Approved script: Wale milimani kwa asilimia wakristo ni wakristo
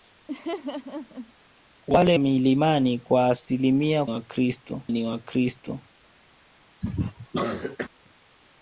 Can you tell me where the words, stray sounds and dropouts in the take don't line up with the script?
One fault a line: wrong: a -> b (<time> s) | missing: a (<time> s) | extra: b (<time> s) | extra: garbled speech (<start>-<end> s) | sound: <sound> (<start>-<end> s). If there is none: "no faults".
sound: laugh (0.3-1.3 s)
sound: cough (6.8-7.9 s)